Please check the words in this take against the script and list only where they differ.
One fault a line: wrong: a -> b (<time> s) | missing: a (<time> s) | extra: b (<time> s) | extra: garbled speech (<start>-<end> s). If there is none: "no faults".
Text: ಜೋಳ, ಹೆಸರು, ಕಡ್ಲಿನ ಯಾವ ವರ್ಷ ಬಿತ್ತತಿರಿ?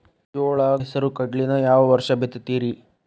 no faults